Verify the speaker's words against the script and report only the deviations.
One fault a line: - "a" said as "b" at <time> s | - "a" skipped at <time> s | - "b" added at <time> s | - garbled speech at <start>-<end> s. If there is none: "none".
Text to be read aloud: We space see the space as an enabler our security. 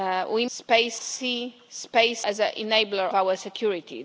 none